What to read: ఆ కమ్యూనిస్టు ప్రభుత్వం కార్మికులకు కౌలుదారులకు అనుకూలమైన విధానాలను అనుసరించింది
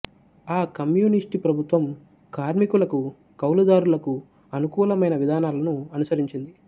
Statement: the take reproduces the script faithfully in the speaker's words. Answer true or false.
true